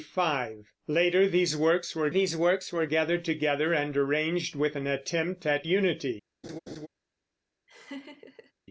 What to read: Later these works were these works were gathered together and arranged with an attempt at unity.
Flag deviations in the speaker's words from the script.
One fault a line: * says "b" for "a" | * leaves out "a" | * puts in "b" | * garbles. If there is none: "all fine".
all fine